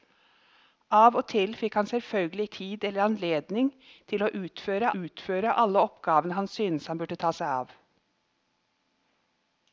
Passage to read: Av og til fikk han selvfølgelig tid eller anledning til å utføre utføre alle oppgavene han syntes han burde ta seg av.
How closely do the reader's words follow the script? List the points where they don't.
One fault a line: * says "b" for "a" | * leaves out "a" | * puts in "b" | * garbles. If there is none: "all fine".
all fine